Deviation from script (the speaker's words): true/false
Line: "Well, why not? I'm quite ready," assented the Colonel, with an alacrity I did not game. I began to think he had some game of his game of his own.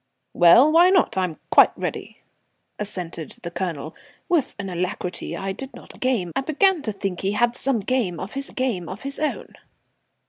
false